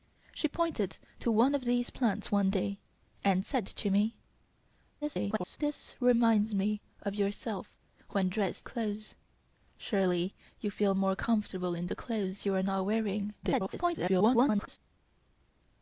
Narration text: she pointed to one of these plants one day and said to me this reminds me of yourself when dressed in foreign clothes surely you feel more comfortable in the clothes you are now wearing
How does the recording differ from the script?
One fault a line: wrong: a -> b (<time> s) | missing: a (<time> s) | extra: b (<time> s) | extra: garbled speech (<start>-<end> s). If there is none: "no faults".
extra: garbled speech (5.0-5.6 s)
missing: in foreign (8.7 s)
extra: garbled speech (13.4-14.8 s)